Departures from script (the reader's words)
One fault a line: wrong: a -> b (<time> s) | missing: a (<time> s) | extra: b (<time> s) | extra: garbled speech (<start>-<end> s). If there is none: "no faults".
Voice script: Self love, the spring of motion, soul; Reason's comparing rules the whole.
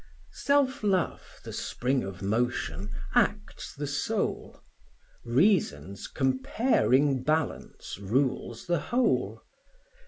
extra: acts the (3.1 s)
extra: balance (7.2 s)